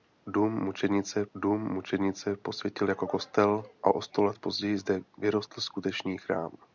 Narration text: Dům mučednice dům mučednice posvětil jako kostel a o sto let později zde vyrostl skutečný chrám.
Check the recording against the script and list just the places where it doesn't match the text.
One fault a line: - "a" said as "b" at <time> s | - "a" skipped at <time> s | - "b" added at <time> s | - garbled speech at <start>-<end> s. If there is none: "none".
none